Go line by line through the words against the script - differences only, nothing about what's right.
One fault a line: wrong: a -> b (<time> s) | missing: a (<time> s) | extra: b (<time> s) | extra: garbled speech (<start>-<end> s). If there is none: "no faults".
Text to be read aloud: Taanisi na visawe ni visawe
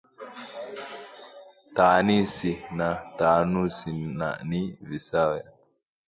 wrong: visawe -> taanusi (3.2 s)